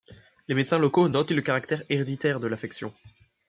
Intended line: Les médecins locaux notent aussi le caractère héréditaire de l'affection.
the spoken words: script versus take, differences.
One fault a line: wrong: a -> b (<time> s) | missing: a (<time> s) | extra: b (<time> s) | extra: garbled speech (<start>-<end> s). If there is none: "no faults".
missing: aussi (1.3 s)